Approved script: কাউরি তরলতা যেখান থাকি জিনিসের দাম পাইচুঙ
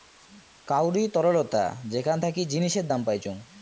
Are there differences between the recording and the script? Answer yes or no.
no